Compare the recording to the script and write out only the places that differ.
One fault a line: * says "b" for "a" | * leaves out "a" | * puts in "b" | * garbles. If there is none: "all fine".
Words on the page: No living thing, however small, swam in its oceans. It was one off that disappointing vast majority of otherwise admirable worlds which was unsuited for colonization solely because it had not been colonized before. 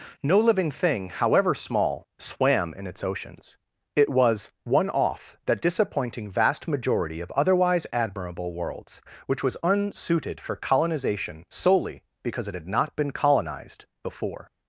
all fine